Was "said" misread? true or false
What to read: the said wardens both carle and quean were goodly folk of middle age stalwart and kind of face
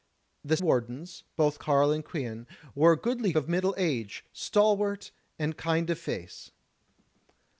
true